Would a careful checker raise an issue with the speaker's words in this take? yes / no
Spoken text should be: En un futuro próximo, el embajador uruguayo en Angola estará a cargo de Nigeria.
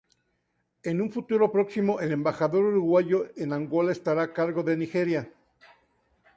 no